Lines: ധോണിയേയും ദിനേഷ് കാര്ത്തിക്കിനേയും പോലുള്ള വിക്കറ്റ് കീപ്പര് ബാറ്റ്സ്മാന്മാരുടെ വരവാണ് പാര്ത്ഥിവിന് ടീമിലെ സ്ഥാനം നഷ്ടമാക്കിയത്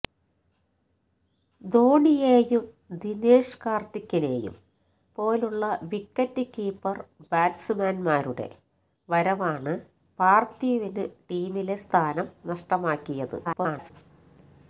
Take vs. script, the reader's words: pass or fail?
fail